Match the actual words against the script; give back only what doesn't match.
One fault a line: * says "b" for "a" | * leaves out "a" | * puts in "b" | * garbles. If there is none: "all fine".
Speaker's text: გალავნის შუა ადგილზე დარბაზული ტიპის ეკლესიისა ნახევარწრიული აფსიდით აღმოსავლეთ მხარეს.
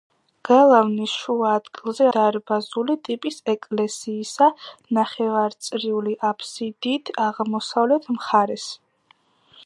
all fine